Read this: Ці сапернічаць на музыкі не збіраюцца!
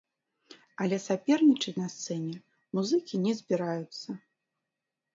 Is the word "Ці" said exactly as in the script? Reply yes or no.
no